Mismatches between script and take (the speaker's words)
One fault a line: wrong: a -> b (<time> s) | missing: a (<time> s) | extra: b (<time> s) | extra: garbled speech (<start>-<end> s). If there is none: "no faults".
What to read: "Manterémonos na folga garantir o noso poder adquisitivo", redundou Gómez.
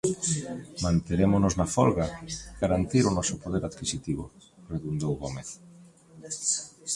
no faults